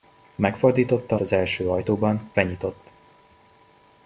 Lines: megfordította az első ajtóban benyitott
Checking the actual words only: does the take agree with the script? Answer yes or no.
yes